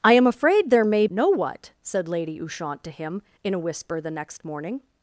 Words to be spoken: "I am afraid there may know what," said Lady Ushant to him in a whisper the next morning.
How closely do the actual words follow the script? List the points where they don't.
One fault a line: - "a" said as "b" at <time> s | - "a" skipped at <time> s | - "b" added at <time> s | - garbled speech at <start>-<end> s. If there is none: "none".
none